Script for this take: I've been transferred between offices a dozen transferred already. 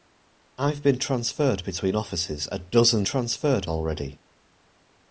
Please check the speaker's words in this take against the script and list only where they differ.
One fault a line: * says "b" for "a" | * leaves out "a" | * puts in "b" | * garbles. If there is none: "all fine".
all fine